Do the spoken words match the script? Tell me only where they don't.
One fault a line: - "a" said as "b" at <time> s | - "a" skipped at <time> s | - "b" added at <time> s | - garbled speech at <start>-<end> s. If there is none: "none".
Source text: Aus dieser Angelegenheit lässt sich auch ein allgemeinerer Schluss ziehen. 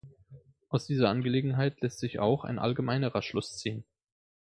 none